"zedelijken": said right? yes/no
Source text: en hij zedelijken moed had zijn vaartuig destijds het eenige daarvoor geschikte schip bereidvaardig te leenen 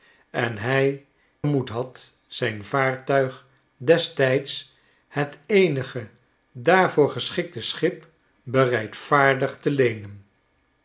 no